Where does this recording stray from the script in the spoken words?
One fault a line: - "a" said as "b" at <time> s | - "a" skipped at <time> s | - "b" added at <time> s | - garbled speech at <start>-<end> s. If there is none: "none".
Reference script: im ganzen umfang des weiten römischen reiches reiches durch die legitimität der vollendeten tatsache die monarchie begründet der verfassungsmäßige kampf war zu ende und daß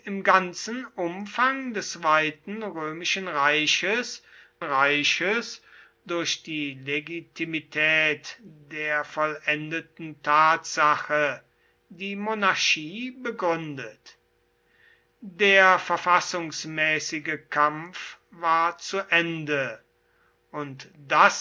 none